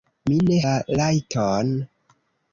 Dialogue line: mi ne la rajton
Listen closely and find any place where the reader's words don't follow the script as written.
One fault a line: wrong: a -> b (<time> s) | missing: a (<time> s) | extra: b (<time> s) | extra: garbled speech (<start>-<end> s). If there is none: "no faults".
no faults